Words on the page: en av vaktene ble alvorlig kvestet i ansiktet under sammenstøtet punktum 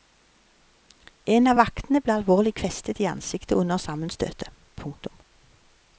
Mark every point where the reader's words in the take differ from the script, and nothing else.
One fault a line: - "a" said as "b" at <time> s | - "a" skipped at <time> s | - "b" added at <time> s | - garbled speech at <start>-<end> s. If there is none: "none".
none